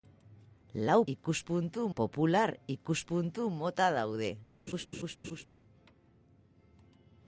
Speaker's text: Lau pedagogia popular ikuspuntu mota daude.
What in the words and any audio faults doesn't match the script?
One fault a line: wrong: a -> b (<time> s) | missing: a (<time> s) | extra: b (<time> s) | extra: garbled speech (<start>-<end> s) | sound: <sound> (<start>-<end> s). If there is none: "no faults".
wrong: pedagogia -> ikuspuntu (1.1 s)
sound: laugh (4.7-5.5 s)